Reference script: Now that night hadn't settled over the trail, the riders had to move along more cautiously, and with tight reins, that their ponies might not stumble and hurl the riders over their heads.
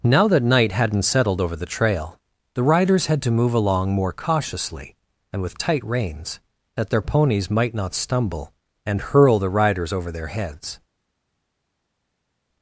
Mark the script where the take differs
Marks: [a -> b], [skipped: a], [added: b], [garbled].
Now that night hadn't settled over the trail, the riders had to move along more cautiously, and with tight reins, that their ponies might not stumble and hurl the riders over their heads.